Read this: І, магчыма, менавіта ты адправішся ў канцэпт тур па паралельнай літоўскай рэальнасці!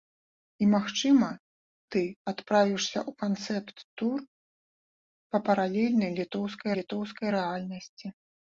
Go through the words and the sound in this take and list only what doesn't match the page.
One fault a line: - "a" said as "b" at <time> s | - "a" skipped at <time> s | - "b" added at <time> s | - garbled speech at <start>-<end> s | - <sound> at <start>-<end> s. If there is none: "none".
- "менавіта" skipped at 1.3 s
- "літоўскай" added at 6.8 s